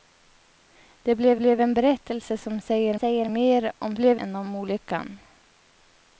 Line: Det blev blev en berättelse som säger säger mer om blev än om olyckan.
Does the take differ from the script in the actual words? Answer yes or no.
no